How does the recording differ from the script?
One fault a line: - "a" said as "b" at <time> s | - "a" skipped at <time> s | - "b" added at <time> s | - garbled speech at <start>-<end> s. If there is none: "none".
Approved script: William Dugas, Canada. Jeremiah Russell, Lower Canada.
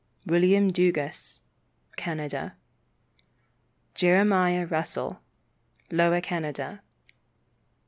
none